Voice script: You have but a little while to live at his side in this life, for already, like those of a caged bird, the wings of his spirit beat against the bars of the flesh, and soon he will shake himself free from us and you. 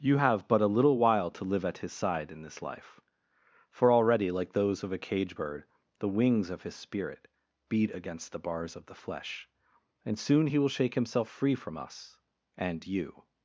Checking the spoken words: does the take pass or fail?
fail